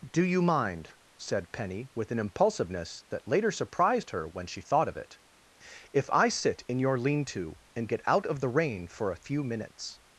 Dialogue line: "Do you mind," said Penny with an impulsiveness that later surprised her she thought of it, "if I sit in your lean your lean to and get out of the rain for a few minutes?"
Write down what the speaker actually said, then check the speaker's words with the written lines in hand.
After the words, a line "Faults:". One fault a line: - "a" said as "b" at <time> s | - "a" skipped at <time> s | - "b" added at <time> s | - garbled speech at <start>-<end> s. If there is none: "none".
"Do you mind," said Penny with an impulsiveness that later surprised her when she thought of it, "if I sit in your lean to and get out of the rain for a few minutes?"
Faults:
- "when" added at 4.3 s
- "your lean" skipped at 7.3 s